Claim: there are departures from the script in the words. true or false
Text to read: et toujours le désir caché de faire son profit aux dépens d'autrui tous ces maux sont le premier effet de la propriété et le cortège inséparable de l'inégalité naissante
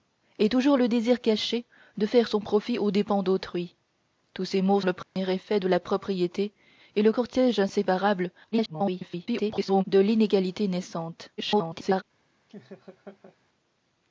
true